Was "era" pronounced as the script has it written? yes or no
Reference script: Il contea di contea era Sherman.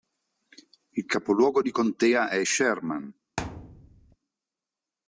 no